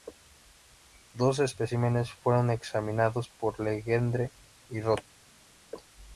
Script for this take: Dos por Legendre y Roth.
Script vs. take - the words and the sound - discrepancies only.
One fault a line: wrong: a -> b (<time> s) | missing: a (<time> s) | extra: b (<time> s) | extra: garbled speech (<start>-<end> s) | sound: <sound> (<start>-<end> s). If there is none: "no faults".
extra: especímenes fueron examinados (1.4 s)